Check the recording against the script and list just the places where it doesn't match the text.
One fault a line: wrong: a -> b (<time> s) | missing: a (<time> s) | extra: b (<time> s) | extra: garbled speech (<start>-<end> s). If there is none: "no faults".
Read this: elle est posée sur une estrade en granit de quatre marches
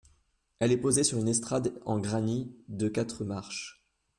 no faults